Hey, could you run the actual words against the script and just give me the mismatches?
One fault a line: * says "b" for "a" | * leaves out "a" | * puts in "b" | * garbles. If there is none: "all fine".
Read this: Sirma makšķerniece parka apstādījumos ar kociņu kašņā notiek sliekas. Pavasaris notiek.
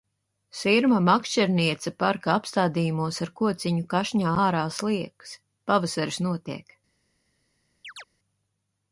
* says "ārā" for "notiek"